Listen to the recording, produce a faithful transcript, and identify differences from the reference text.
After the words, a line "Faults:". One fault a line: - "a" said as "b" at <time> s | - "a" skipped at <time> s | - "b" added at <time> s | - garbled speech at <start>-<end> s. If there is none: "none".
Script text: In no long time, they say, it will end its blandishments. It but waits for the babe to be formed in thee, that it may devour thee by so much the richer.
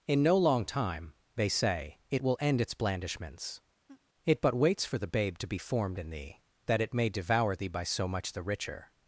In no long time, they say, it will end its blandishments. It but waits for the babe to be formed in thee, that it may devour thee by so much the richer.
Faults:
none